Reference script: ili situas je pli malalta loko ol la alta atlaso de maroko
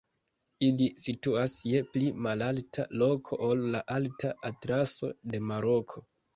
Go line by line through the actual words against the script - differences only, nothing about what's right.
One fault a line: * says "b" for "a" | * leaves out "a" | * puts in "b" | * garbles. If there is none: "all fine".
all fine